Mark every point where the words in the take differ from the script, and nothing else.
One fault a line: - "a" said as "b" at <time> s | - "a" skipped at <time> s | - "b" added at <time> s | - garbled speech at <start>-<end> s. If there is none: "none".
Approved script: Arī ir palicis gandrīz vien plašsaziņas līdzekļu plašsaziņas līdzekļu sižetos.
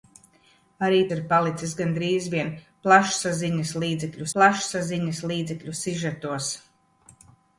none